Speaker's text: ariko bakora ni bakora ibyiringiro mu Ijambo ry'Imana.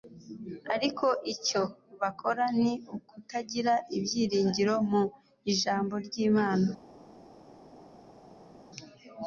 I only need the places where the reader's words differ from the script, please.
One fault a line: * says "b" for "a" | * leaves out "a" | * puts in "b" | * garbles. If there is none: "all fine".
* puts in "icyo"
* says "ukutagira" for "bakora"